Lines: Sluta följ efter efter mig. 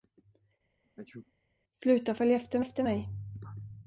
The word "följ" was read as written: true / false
true